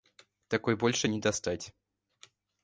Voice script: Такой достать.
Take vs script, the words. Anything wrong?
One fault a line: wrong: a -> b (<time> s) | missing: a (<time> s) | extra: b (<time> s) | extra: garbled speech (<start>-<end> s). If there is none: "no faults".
extra: больше не (0.8 s)